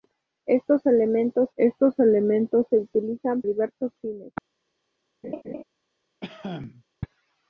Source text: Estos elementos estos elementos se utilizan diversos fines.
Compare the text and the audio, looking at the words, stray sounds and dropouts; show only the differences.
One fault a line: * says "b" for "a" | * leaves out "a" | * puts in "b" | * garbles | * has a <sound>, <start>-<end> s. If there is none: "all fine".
* has a laugh, 5.2-5.6 s
* has a cough, 6.2-6.8 s